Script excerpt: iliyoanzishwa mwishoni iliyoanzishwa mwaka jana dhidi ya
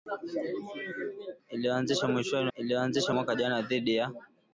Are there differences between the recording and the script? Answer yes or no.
no